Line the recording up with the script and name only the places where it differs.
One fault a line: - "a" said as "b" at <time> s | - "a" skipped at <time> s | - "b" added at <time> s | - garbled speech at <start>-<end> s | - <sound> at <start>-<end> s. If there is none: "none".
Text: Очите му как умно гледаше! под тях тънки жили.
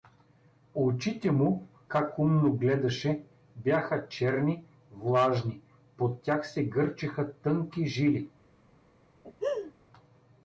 - "бяха черни влажни" added at 3.5 s
- "се гърчеха" added at 6.5 s
- laugh at 9.2-9.7 s